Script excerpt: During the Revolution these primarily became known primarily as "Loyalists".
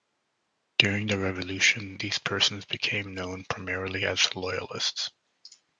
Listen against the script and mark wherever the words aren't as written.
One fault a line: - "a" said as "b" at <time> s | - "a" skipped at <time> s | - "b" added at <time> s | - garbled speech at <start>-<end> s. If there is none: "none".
- "primarily" said as "persons" at 2.2 s